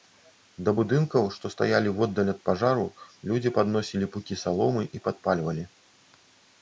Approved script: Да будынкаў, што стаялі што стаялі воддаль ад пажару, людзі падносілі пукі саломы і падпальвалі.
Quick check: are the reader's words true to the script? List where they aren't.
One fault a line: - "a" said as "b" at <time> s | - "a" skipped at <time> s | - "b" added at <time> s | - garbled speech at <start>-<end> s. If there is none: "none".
- "што стаялі" skipped at 1.9 s